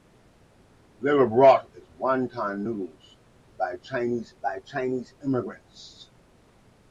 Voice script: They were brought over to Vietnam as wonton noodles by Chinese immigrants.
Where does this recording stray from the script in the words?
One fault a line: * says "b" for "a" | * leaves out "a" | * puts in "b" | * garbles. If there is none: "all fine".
* leaves out "over to Vietnam"
* puts in "by Chinese"